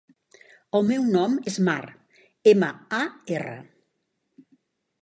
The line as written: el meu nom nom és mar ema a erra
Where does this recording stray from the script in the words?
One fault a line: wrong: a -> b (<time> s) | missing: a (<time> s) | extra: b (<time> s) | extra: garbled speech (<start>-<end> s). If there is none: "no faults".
missing: nom (1.4 s)